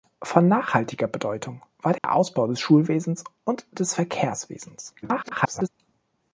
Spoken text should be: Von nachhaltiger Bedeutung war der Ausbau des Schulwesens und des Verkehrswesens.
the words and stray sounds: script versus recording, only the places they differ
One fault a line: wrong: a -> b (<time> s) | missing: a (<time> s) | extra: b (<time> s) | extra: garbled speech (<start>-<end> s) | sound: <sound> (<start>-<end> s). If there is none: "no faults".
sound: dropout (2.0-2.0 s)
extra: garbled speech (5.0-5.7 s)